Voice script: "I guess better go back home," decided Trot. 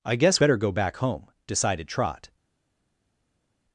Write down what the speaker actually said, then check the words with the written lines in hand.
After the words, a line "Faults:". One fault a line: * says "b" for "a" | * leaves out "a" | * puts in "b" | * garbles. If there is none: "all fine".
"I guess better go back home," decided Trot.
Faults:
all fine